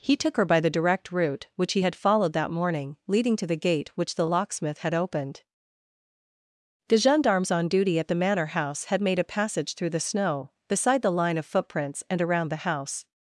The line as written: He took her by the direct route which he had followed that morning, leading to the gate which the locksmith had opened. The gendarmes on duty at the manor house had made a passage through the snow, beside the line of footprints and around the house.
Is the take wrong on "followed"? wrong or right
right